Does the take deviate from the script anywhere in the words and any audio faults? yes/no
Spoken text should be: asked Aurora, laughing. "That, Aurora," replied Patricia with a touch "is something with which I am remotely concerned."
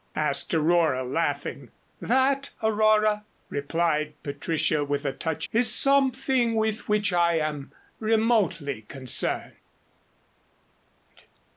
no